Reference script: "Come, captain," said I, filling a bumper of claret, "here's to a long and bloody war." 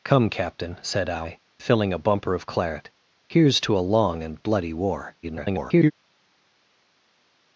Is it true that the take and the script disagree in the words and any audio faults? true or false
true